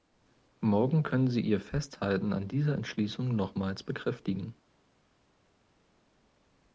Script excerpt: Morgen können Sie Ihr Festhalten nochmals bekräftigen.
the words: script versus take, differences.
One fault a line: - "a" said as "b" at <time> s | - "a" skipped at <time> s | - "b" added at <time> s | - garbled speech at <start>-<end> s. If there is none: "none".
- "an dieser Entschließung" added at 2.3 s